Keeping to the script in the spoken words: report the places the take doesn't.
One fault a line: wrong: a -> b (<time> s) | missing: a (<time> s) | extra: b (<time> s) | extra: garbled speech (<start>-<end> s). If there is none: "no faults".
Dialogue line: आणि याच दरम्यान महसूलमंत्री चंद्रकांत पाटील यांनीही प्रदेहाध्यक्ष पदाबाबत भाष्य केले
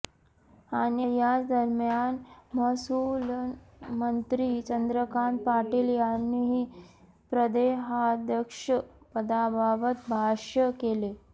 no faults